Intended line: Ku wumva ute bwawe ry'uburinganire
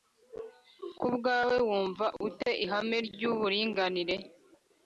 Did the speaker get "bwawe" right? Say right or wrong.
wrong